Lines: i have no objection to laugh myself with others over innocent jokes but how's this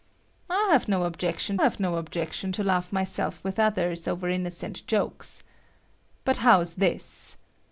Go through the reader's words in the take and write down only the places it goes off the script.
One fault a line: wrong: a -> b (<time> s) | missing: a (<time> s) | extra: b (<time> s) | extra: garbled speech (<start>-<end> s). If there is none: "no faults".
extra: have no objection (1.6 s)